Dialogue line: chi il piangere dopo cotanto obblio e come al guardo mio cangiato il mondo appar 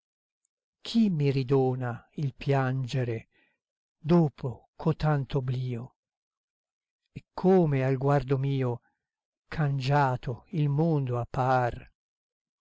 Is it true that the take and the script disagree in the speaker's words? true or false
true